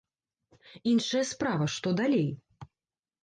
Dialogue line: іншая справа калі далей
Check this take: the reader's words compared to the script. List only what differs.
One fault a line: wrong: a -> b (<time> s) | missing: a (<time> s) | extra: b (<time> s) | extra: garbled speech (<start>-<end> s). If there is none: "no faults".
wrong: калі -> што (1.8 s)